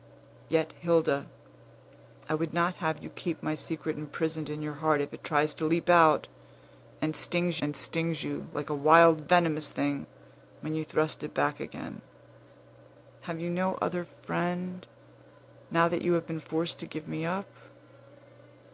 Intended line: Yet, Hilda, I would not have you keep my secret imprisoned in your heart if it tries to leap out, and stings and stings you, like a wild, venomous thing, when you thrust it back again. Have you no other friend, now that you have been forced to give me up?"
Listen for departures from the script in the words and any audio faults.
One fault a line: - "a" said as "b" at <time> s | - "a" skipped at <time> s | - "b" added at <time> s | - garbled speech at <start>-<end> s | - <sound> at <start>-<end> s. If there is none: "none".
none